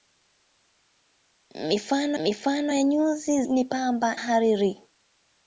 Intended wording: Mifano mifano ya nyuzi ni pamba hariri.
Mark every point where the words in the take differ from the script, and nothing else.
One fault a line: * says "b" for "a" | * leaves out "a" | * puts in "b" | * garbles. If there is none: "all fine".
all fine